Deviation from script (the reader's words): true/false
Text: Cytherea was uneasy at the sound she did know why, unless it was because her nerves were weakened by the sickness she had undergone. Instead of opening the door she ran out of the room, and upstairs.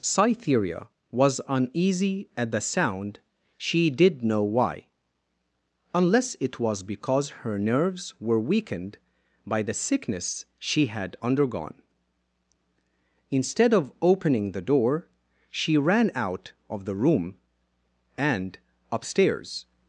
false